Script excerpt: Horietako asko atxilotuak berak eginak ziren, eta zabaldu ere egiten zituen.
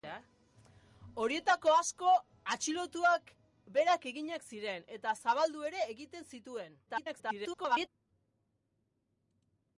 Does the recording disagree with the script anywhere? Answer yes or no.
yes